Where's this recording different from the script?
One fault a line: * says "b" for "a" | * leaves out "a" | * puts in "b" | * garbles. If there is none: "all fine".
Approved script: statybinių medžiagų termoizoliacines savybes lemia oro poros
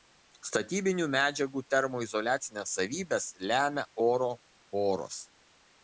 all fine